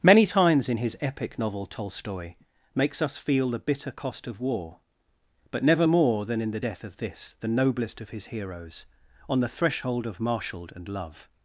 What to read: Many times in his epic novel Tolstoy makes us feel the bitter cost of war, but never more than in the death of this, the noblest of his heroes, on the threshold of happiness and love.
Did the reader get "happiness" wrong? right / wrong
wrong